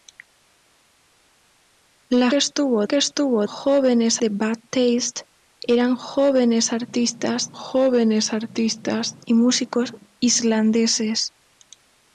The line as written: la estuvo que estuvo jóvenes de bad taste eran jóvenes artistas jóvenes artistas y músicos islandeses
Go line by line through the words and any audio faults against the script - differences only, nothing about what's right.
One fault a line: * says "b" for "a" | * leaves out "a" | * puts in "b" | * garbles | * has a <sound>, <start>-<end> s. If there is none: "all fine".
all fine